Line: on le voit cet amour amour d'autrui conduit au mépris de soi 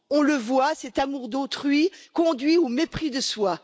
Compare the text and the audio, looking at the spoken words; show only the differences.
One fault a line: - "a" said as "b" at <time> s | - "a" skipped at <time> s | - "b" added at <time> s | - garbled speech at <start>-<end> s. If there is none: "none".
- "amour" skipped at 1.3 s